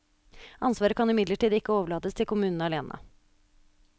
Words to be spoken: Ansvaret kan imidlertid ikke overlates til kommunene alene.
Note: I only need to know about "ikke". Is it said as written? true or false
true